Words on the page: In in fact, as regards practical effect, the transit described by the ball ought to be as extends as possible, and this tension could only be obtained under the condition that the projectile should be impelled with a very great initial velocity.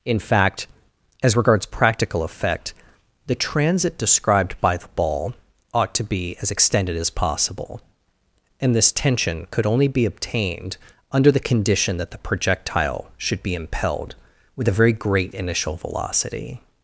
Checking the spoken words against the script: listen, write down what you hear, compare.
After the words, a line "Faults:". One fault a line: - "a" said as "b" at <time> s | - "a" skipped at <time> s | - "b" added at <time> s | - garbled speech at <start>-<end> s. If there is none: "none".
In fact, as regards practical effect, the transit described by the ball ought to be as extended as possible, and this tension could only be obtained under the condition that the projectile should be impelled with a very great initial velocity.
Faults:
- "in" skipped at 0.2 s
- "extends" said as "extended" at 6.5 s